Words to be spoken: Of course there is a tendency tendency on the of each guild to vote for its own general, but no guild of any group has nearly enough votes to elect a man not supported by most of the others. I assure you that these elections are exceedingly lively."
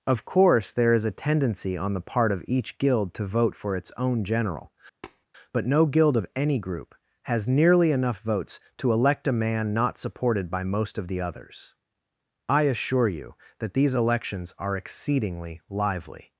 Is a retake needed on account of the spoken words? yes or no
yes